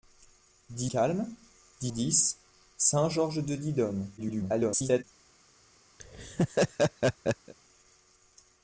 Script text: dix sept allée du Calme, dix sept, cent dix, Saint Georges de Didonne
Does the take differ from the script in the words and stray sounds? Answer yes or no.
yes